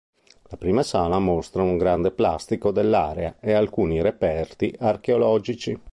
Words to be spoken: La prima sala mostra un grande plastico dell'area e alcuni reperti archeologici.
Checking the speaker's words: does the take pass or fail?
pass